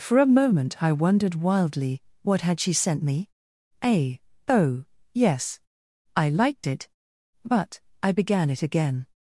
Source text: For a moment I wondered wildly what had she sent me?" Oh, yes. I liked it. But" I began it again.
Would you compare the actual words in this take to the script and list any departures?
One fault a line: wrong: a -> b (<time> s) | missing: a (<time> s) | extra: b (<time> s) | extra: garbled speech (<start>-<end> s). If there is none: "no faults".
extra: a (3.8 s)